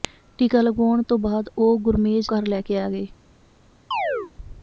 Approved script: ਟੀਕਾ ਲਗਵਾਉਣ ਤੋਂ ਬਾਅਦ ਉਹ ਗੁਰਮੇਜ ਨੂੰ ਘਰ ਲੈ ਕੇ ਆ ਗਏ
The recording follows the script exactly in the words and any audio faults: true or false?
false